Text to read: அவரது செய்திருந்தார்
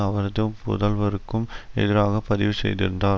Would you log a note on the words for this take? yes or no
yes